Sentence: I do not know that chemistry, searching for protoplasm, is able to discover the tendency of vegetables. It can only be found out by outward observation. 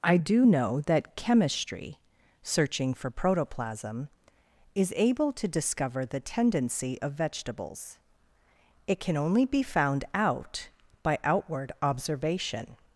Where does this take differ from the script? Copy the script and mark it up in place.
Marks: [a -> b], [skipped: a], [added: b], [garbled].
I do [skipped: not] know that chemistry, searching for protoplasm, is able to discover the tendency of vegetables. It can only be found out by outward observation.